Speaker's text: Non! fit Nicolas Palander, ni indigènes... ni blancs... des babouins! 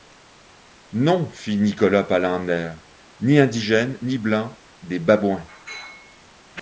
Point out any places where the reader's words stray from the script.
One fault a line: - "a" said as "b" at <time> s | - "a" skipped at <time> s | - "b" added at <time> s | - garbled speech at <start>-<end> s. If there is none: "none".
none